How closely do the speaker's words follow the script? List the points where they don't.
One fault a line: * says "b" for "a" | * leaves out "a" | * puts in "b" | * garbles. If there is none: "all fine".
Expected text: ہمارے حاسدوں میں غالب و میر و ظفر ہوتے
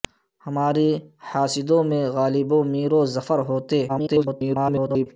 * garbles